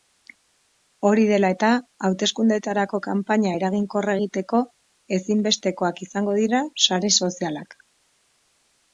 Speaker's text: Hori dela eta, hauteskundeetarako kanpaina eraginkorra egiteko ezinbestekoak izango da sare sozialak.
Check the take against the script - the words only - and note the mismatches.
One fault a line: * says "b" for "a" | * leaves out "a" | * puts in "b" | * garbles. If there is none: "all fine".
* says "dira" for "da"